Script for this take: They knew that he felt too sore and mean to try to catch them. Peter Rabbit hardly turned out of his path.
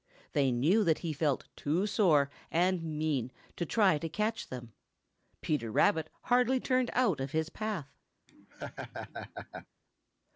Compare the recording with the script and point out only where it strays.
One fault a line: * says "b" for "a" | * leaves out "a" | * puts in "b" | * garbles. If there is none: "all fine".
all fine